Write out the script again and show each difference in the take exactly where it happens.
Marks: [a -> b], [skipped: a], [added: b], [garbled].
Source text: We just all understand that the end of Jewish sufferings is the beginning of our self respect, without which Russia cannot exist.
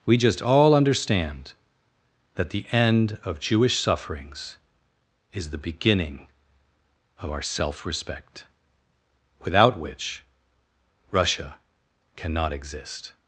We just all understand that the end of Jewish sufferings is the beginning of our self respect, without which Russia cannot exist.